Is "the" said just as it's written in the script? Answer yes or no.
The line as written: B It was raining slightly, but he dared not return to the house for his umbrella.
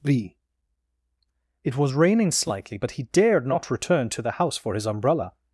yes